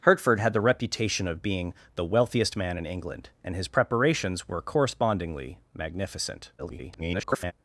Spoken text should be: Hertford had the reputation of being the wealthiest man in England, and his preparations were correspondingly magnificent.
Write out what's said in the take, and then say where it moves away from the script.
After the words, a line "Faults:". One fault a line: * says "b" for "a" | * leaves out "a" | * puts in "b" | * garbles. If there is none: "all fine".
Hertford had the reputation of being the wealthiest man in England, and his preparations were correspondingly magnificent. [garbled]
Faults:
* garbles